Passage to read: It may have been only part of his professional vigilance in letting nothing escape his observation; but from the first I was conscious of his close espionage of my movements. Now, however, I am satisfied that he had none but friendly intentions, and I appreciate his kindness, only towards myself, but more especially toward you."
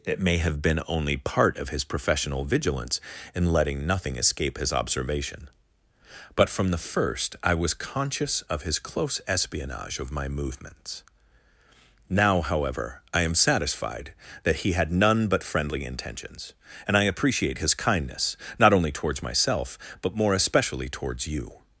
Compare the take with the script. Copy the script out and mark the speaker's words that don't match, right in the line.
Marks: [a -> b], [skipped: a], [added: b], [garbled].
It may have been only part of his professional vigilance in letting nothing escape his observation; but from the first I was conscious of his close espionage of my movements. Now, however, I am satisfied that he had none but friendly intentions, and I appreciate his kindness, [added: not] only towards myself, but more especially [toward -> towards] you."